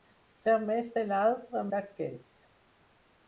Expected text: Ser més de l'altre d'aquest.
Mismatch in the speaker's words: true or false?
false